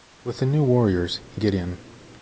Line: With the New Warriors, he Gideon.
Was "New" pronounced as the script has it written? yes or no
yes